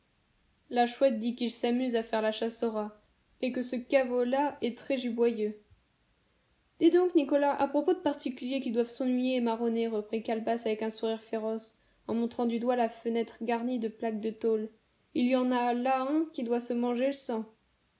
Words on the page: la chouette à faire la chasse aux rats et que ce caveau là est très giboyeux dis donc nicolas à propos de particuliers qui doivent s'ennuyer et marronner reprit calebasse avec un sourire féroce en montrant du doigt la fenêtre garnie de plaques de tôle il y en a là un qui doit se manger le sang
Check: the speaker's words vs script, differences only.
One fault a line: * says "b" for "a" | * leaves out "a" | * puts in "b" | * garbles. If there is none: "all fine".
* puts in "dit qu'il s'amuse"